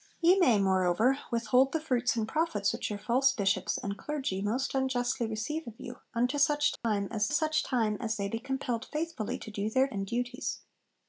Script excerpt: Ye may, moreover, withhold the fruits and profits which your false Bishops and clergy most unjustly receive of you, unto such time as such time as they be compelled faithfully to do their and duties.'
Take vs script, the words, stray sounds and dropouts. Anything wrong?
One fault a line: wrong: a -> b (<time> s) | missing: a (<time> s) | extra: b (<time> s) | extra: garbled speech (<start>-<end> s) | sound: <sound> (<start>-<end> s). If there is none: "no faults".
sound: dropout (6.8-6.8 s)